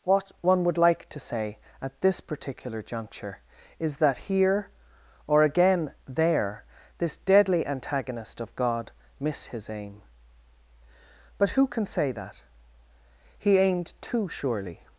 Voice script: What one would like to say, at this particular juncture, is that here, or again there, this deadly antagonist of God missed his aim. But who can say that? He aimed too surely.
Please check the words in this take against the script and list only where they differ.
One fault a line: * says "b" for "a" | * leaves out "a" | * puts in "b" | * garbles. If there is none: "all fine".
* says "miss" for "missed"